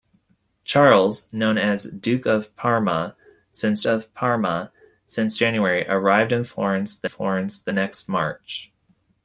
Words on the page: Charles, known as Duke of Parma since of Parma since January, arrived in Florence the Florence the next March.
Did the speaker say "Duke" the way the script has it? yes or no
yes